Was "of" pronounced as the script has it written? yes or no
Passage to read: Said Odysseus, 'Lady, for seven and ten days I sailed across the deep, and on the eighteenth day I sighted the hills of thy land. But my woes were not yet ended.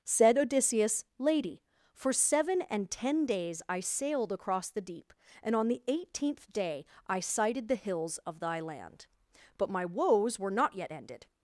yes